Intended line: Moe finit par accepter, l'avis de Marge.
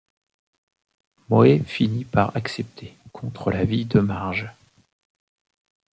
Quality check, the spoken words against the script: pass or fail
fail